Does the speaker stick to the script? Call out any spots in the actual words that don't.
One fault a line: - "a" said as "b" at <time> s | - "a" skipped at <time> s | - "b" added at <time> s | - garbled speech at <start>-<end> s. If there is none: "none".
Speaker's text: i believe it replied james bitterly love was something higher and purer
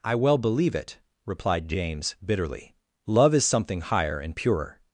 - "well" added at 0.1 s
- "was" said as "is" at 3.3 s